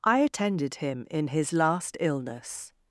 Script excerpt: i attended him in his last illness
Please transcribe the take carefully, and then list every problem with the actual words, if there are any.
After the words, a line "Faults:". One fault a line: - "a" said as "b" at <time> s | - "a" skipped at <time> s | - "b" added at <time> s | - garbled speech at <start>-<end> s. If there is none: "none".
i attended him in his last illness
Faults:
none